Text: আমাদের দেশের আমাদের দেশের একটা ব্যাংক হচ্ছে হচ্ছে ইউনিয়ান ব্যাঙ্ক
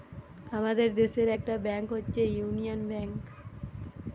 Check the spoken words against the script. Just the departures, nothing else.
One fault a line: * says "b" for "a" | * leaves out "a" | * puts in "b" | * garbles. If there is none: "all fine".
* leaves out "আমাদের দেশের"
* leaves out "হচ্ছে"